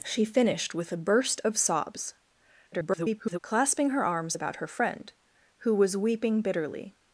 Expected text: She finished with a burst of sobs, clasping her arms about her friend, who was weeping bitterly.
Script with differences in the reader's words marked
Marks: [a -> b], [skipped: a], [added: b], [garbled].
She finished with a burst of sobs, [garbled] clasping her arms about her friend, who was weeping bitterly.